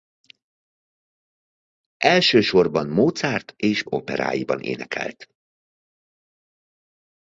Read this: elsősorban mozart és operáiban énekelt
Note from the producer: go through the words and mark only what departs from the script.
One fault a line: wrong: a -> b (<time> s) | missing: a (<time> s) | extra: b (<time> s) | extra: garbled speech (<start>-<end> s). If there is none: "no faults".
no faults